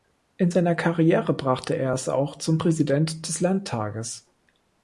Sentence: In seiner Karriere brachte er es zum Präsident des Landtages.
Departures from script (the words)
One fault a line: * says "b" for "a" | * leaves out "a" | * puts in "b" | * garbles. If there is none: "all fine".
* puts in "auch"